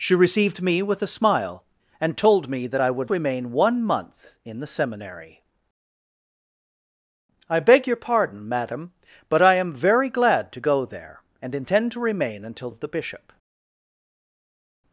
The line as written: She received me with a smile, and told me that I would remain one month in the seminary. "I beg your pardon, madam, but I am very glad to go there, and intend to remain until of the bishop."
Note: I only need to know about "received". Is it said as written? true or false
true